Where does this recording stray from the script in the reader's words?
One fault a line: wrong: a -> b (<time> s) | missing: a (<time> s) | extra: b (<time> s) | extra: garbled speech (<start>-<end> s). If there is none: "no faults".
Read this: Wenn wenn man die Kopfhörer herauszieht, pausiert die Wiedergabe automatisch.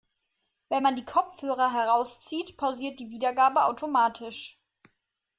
missing: wenn (0.8 s)